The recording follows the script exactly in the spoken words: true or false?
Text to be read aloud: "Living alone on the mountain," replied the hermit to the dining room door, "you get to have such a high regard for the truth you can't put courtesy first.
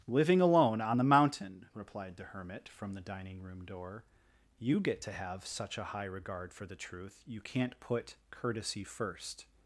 false